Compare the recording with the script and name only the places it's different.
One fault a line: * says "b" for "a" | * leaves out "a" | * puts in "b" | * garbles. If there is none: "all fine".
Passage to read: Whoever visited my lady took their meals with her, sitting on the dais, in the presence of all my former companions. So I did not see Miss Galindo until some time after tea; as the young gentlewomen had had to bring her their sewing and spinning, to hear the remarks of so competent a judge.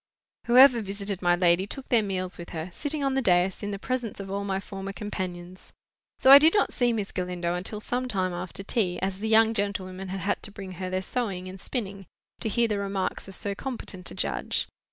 all fine